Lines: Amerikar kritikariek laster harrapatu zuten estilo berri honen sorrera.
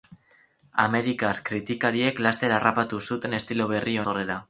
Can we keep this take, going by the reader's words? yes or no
no